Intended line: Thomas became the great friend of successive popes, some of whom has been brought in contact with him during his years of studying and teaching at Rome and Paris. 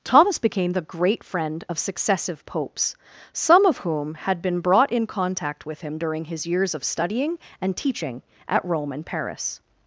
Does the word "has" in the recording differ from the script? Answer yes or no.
yes